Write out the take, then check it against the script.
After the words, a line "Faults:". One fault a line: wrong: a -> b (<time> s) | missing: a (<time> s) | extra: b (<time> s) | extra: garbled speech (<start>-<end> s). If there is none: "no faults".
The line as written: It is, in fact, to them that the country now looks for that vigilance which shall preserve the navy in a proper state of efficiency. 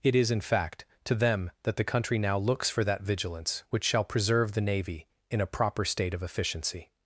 It is, in fact, to them that the country now looks for that vigilance which shall preserve the navy in a proper state of efficiency.
Faults:
no faults